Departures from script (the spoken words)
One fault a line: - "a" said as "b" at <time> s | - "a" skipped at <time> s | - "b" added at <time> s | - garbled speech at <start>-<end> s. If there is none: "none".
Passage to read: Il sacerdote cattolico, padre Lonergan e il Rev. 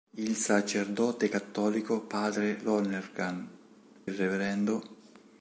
- "e" skipped at 3.5 s